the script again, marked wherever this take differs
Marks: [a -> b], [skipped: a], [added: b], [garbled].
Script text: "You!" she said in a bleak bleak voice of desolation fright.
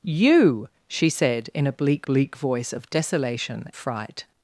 "You!" she said in a bleak bleak voice of desolation fright.